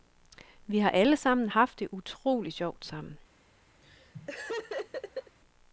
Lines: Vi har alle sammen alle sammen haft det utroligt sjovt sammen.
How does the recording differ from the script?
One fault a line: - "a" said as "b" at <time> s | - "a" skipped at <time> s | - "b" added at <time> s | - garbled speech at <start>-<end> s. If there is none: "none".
- "alle sammen" skipped at 1.5 s